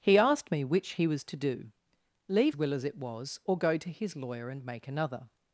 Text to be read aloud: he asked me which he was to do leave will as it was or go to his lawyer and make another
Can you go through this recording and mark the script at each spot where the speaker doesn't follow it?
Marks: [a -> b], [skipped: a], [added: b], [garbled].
he asked me which he was to do leave will as it was or go to his lawyer and make another